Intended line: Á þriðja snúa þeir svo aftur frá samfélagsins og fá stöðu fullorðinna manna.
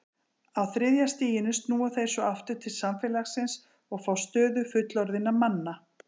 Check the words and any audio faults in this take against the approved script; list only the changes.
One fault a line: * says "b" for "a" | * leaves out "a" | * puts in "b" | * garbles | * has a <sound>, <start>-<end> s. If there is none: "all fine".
* puts in "stiginu"
* says "til" for "frá"